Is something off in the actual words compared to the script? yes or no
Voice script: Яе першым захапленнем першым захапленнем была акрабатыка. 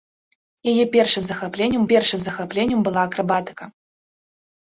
no